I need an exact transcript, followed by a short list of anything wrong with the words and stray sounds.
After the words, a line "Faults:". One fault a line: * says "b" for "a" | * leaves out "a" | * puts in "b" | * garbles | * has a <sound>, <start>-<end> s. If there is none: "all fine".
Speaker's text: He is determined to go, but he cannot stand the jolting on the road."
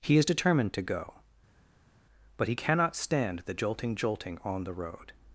He is determined to go, but he cannot stand the jolting jolting on the road."
Faults:
* puts in "jolting"